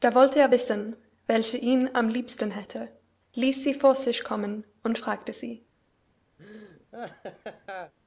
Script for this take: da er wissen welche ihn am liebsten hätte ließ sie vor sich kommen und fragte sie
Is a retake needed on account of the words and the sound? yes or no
yes